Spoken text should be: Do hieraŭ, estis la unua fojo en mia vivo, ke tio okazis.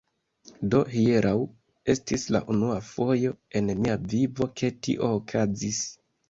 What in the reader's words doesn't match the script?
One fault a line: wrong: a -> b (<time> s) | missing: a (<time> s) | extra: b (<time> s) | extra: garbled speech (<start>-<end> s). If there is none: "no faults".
no faults